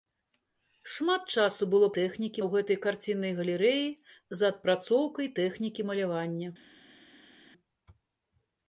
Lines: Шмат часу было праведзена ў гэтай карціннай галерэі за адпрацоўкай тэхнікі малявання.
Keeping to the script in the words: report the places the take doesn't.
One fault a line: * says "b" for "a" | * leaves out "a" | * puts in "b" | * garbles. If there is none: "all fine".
* says "тэхнікі" for "праведзена"